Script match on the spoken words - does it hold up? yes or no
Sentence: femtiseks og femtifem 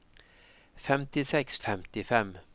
yes